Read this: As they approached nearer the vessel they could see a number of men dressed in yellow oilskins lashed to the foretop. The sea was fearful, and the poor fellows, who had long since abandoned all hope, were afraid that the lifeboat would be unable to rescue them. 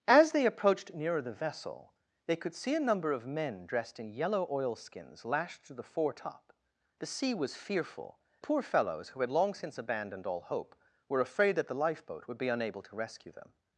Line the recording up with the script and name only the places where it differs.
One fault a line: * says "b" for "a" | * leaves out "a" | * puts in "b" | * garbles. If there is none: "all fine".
* leaves out "and the"